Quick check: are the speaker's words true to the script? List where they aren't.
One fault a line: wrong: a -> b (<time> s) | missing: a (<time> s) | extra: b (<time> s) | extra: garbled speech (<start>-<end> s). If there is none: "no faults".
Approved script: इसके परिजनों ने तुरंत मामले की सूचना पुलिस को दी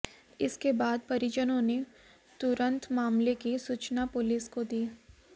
extra: बाद (0.7 s)